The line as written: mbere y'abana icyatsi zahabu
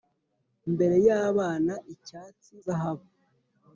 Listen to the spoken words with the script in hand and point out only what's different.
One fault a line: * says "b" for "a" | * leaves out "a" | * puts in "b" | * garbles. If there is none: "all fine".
all fine